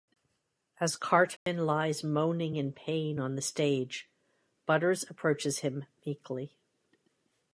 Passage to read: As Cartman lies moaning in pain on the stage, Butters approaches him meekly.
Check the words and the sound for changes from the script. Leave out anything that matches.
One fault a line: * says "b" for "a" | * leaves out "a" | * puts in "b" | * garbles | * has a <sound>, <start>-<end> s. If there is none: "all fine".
* has a dropout, 1.4-1.5 s